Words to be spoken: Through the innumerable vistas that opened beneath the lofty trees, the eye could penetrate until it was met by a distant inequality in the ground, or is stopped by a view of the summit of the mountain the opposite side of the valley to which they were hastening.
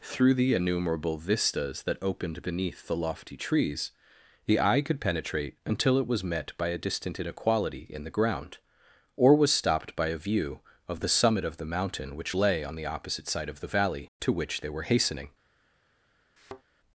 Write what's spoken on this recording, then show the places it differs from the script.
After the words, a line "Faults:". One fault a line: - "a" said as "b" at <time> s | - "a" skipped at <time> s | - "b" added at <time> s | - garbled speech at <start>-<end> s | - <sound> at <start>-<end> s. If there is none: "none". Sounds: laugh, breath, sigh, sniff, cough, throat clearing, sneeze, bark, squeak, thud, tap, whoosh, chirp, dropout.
Through the innumerable vistas that opened beneath the lofty trees, the eye could penetrate until it was met by a distant inequality in the ground, or was stopped by a view of the summit of the mountain which lay on the opposite side of the valley to which they were hastening.
Faults:
- "is" said as "was" at 9.3 s
- "which lay on" added at 12.2 s
- thud at 16.4-16.6 s